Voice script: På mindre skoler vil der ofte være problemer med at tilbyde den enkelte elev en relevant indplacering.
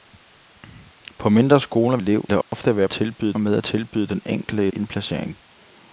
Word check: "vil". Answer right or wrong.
wrong